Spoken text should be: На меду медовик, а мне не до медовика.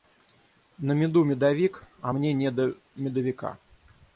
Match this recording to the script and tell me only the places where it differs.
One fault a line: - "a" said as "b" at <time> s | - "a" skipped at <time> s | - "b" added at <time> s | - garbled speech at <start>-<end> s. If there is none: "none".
none